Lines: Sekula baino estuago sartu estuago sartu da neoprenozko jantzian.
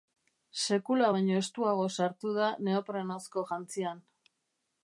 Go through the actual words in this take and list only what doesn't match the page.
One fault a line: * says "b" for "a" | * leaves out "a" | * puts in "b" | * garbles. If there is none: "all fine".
* leaves out "estuago sartu"